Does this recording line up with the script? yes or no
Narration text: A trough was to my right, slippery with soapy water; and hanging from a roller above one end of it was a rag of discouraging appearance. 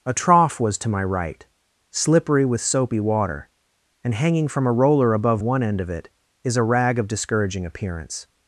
no